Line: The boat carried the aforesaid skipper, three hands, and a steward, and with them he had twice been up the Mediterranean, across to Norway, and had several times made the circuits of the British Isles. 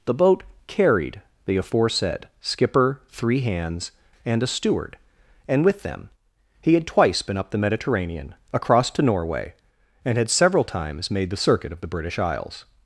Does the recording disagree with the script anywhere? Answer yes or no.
yes